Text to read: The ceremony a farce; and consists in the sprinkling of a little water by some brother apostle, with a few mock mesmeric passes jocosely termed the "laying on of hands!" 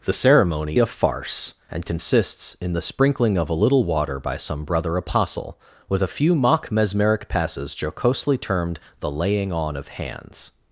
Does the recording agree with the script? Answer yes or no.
yes